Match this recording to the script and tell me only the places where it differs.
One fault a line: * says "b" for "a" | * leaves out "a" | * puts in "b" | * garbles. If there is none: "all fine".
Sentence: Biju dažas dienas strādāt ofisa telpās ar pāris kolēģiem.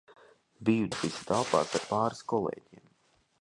* leaves out "dažas dienas strādāt"